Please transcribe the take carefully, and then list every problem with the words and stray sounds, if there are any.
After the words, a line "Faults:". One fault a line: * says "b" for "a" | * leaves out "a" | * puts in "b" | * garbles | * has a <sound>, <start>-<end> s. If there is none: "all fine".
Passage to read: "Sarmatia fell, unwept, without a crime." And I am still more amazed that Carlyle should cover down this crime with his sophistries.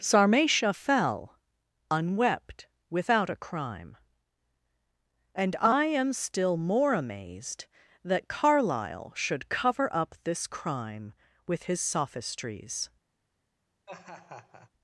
"Sarmatia fell, unwept, without a crime." And I am still more amazed that Carlyle should cover up this crime with his sophistries.
Faults:
* says "up" for "down"
* has a laugh, 13.9-14.7 s